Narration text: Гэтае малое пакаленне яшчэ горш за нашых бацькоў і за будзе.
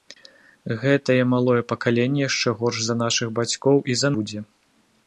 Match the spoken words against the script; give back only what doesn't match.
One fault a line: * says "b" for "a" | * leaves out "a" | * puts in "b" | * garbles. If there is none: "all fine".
all fine